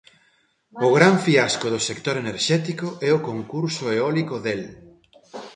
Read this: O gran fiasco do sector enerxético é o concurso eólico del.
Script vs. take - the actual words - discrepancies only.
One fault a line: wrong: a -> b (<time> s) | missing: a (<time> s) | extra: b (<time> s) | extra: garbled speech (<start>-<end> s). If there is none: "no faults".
no faults